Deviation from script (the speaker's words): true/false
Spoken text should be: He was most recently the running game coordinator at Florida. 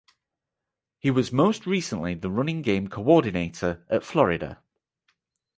false